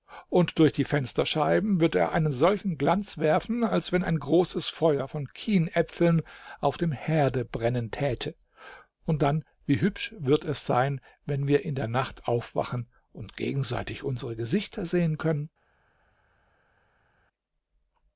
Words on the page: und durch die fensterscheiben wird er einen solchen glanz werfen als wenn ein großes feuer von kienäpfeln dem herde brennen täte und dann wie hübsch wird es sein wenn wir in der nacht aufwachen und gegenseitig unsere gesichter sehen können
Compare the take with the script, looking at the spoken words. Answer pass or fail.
fail